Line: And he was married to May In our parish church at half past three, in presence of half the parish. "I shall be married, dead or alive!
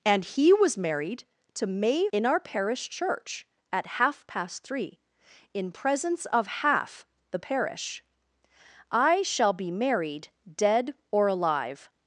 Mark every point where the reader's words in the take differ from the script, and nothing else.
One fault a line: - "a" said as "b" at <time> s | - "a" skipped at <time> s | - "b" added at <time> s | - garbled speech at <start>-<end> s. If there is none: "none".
none